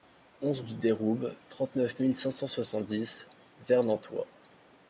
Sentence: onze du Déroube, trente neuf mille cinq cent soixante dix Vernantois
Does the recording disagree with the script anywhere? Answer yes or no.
no